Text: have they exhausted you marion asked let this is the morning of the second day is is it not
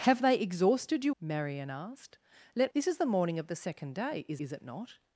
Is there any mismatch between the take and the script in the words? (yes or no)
no